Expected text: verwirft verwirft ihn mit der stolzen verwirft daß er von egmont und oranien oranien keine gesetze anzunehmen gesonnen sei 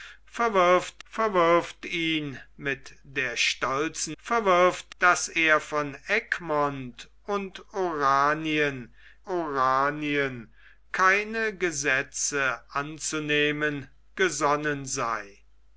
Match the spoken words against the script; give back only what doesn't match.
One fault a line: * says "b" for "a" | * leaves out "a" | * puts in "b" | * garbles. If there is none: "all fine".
all fine